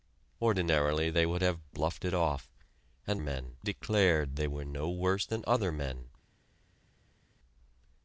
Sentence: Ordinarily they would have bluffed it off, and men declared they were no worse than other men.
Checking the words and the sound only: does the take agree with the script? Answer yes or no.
yes